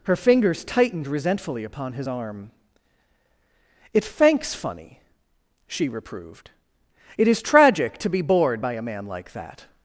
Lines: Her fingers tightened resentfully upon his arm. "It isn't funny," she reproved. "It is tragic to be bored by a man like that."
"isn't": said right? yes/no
no